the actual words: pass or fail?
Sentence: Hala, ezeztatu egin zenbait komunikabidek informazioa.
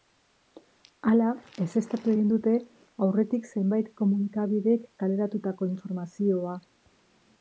fail